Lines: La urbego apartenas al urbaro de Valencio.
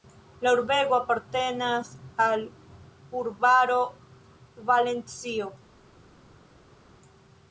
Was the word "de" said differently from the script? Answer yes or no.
yes